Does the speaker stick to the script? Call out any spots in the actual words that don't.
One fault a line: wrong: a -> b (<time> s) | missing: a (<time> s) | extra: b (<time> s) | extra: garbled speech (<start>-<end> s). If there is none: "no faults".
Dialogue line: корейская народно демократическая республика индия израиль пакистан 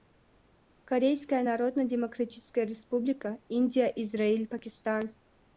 no faults